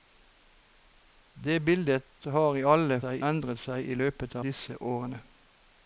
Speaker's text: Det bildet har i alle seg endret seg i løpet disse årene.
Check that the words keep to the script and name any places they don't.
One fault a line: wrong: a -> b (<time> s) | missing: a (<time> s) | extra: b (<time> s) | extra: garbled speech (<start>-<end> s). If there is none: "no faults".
no faults